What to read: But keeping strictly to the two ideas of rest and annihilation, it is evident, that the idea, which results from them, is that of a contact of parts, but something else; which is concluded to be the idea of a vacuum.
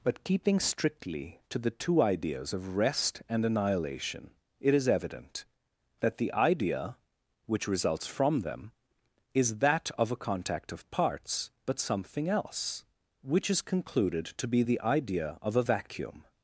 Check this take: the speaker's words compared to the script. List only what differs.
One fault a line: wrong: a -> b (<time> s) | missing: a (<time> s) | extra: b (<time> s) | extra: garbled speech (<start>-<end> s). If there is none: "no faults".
no faults